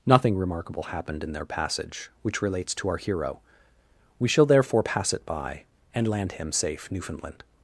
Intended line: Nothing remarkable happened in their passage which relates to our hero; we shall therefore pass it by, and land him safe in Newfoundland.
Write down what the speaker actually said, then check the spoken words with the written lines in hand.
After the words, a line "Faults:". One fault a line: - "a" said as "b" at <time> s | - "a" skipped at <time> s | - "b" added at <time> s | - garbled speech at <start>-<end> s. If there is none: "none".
Nothing remarkable happened in their passage which relates to our hero; we shall therefore pass it by, and land him safe Newfoundland.
Faults:
- "in" skipped at 6.9 s